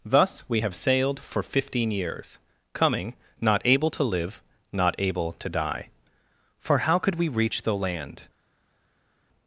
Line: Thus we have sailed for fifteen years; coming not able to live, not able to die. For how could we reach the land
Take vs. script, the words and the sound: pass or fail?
pass